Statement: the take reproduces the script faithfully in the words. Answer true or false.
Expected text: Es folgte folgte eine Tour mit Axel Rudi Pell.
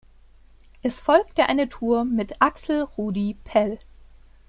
false